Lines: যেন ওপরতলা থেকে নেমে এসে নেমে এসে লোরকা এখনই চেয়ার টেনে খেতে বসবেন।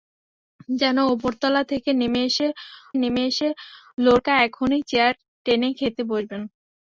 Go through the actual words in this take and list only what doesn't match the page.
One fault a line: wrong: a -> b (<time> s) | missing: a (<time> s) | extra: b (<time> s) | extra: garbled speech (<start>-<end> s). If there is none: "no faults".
no faults